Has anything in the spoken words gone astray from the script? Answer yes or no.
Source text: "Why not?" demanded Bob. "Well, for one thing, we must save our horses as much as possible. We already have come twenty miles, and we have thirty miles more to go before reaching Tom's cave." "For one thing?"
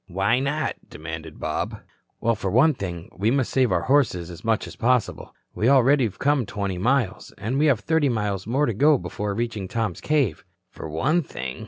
no